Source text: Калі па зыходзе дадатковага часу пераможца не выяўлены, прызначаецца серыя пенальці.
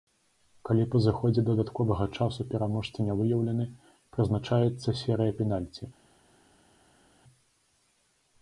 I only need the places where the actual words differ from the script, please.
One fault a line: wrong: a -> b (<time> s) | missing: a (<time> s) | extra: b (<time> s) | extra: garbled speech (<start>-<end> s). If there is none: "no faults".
no faults